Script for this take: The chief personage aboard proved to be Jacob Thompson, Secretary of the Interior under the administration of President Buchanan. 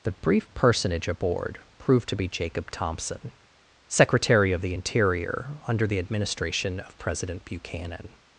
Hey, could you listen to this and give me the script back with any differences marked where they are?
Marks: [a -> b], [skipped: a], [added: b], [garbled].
The [chief -> brief] personage aboard proved to be Jacob Thompson, Secretary of the Interior under the administration of President Buchanan.